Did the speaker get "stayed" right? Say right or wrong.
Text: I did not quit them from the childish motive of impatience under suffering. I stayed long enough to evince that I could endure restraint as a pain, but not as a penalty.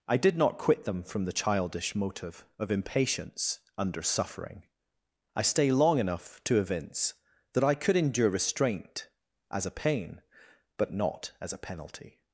wrong